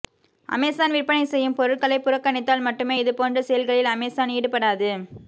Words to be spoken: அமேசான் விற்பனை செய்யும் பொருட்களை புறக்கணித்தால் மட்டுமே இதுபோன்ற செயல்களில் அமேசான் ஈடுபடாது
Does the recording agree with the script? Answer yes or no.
yes